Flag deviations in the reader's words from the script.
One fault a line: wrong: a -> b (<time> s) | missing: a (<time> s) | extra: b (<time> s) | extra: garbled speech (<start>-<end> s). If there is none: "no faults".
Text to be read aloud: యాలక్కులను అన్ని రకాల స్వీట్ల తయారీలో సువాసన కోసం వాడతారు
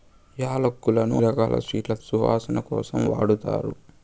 missing: అన్ని (1.2 s)
missing: తయారీలో (1.9 s)